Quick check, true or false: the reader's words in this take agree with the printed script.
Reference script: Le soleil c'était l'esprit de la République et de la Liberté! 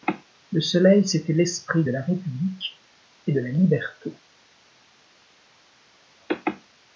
true